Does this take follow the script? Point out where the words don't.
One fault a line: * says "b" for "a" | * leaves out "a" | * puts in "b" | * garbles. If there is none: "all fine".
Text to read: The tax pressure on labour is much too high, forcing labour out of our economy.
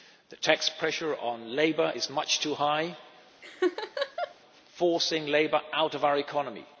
all fine